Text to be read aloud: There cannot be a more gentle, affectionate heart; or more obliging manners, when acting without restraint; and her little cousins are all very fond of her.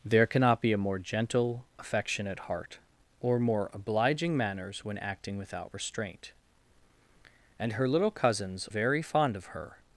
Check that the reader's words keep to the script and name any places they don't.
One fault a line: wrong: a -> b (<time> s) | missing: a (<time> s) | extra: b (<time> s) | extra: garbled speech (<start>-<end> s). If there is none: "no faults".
missing: are all (8.7 s)